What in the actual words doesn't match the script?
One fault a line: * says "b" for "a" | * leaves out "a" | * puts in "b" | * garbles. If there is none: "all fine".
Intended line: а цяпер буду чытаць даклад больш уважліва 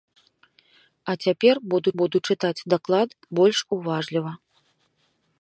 * puts in "буду"